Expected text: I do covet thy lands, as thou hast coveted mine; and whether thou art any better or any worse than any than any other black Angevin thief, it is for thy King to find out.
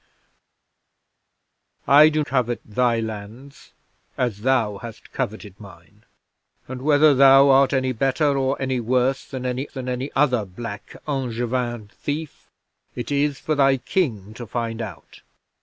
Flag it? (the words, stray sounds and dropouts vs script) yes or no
no